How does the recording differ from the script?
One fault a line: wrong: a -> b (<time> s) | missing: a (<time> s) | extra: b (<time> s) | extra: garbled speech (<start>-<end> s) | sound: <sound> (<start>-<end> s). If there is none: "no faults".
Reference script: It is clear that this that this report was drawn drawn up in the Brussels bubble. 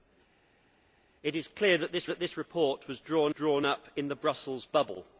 no faults